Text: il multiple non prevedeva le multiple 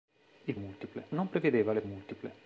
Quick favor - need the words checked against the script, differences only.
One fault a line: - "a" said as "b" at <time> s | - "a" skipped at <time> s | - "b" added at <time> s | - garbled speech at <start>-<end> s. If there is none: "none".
none